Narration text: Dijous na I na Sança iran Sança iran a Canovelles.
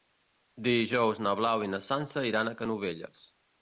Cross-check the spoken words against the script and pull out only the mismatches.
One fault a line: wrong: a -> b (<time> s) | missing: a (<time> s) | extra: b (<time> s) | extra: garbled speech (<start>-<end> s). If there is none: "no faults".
extra: Blau (1.4 s)
missing: Sança iran (2.5 s)